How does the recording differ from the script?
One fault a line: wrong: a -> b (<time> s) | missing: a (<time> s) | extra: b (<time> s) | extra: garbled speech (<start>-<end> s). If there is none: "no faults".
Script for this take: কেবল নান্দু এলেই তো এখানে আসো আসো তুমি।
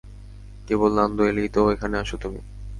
missing: আসো (2.1 s)